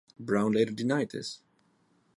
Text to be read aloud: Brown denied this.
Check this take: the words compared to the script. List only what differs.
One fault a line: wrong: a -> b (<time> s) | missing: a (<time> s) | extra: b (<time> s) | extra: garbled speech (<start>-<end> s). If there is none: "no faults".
extra: later (0.5 s)